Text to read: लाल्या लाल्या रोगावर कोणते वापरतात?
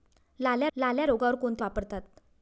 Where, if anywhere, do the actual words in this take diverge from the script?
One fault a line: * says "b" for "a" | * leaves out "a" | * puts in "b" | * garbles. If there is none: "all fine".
all fine